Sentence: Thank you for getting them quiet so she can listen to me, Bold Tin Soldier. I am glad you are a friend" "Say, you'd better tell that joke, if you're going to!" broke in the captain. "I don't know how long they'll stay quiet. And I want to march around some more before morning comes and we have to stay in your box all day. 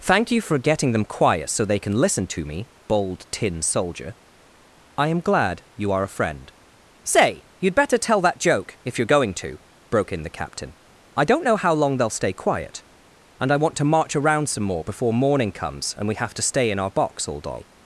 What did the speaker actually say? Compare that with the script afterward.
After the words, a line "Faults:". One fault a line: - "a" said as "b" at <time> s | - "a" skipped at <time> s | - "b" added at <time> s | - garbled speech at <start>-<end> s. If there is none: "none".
Thank you for getting them quiet so they can listen to me, Bold Tin Soldier. I am glad you are a friend" "Say, you'd better tell that joke, if you're going to!" broke in the captain. "I don't know how long they'll stay quiet. And I want to march around some more before morning comes and we have to stay in our box all day.
Faults:
- "she" said as "they" at 1.6 s
- "your" said as "our" at 16.8 s